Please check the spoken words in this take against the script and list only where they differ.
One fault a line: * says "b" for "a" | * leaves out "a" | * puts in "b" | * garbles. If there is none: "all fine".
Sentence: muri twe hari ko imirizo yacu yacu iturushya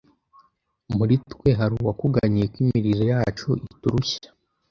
* puts in "uwakuganyiye"
* leaves out "yacu"